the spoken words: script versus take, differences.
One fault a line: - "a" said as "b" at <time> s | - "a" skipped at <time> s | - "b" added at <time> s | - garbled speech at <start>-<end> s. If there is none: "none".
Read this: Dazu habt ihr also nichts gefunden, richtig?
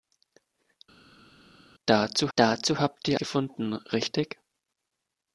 - "dazu" added at 2.3 s
- "also nichts" skipped at 3.2 s